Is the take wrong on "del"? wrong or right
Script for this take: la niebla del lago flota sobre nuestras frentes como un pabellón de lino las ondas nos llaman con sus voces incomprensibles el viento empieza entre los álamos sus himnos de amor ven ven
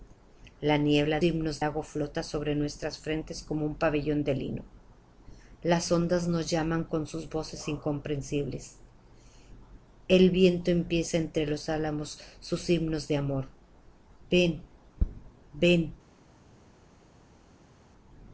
wrong